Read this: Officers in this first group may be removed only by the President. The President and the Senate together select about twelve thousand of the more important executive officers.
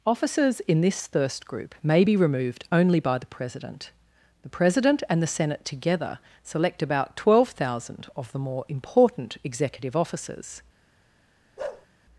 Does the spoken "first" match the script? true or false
false